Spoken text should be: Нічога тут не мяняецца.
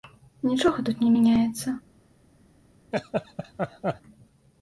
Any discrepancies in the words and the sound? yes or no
yes